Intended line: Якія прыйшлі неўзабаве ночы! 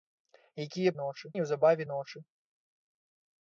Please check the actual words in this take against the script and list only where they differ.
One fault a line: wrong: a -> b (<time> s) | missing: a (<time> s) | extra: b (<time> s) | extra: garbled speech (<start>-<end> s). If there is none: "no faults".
wrong: прыйшлі -> ночы (1.0 s)